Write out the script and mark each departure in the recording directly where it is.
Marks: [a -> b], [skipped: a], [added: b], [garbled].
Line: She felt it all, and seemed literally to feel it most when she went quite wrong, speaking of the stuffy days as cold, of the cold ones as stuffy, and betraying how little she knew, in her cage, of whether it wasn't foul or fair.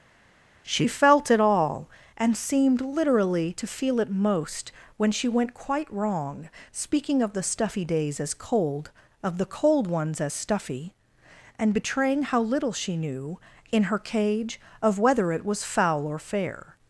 She felt it all, and seemed literally to feel it most when she went quite wrong, speaking of the stuffy days as cold, of the cold ones as stuffy, and betraying how little she knew, in her cage, of whether it [wasn't -> was] foul or fair.